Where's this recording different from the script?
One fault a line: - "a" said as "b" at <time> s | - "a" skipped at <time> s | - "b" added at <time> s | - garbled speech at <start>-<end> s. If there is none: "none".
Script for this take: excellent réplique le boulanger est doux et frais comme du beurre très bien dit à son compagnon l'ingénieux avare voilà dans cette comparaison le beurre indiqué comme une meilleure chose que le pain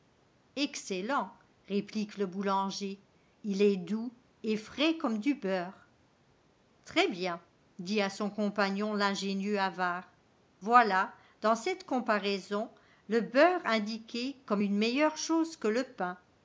- "il" added at 3.4 s